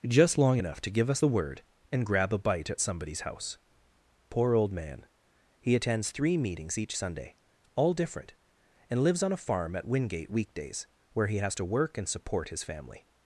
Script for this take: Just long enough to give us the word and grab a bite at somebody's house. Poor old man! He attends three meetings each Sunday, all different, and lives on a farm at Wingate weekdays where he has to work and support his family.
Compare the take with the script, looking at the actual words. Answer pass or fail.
pass